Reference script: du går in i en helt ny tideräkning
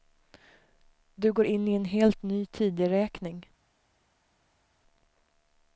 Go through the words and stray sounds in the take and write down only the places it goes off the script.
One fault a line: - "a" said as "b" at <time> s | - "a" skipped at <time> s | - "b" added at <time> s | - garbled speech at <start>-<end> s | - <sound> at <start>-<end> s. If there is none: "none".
none